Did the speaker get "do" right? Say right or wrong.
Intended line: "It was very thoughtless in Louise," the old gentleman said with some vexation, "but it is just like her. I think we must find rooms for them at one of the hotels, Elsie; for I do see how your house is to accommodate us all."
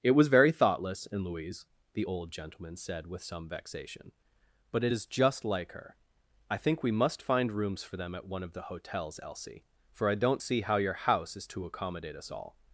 wrong